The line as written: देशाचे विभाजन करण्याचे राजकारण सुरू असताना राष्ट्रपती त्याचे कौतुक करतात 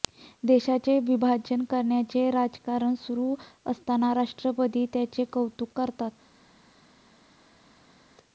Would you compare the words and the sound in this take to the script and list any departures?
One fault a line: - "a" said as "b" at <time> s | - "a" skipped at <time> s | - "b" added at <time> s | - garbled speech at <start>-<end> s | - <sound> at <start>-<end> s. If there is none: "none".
none